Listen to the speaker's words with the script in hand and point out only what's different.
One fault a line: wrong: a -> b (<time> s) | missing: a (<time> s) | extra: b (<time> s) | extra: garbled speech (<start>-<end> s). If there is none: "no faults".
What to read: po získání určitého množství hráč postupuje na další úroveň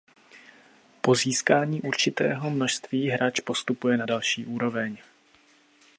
no faults